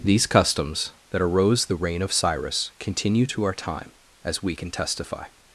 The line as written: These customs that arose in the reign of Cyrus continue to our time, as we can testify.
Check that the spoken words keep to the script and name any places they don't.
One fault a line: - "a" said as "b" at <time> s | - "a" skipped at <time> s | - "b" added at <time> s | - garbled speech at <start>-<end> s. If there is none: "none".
- "in" skipped at 1.6 s